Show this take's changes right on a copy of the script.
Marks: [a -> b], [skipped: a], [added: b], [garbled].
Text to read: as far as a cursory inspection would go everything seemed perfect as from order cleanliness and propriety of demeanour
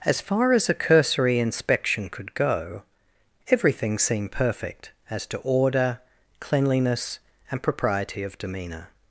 as far as a cursory inspection [would -> could] go everything seemed perfect as [from -> to] order cleanliness and propriety of demeanour